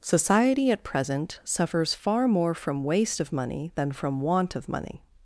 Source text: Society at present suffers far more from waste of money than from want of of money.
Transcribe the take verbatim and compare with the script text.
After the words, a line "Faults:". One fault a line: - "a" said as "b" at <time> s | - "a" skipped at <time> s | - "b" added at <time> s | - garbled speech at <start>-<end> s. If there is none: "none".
Society at present suffers far more from waste of money than from want of money.
Faults:
- "of" skipped at 4.7 s